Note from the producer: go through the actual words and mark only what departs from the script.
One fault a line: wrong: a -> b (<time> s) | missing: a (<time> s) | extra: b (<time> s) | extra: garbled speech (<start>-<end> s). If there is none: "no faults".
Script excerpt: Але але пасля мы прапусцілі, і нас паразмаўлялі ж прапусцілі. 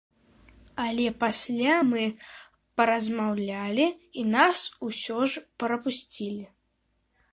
missing: але (1.0 s)
wrong: прапусцілі -> паразмаўлялі (2.8 s)
wrong: паразмаўлялі -> усё (4.9 s)